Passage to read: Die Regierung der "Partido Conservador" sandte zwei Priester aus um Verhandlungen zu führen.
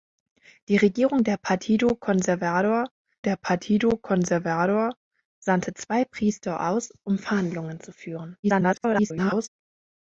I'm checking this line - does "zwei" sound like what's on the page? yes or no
yes